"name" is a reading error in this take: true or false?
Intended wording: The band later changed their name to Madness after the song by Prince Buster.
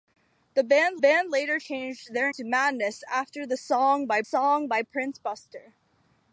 true